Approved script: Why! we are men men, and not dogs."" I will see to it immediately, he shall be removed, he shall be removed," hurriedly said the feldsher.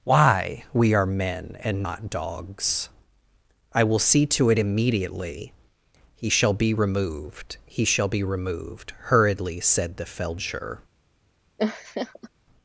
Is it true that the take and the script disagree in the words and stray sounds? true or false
true